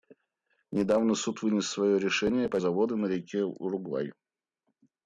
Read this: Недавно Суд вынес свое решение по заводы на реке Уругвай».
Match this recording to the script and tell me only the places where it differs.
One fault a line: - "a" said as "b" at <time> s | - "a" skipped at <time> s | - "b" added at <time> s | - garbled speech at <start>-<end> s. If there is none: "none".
none